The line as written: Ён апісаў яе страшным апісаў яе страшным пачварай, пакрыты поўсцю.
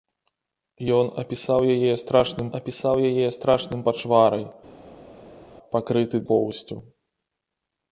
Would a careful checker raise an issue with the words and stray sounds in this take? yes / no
no